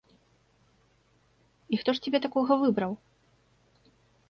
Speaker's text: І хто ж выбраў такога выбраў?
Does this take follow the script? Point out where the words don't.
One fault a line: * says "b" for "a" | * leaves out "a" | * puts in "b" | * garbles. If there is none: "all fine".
* says "цябе" for "выбраў"